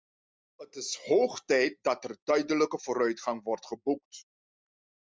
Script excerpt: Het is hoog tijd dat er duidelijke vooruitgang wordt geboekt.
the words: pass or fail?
pass